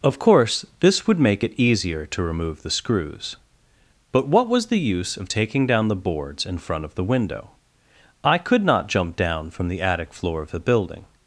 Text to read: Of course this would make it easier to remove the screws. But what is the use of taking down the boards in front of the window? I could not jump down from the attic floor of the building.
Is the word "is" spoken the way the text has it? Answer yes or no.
no